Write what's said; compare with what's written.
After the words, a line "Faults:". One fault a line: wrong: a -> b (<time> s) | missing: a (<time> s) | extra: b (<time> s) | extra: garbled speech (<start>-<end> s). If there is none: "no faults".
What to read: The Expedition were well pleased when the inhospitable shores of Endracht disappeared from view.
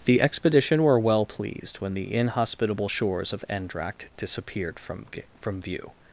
The Expedition were well pleased when the inhospitable shores of Endracht disappeared from from view.
Faults:
extra: from (5.4 s)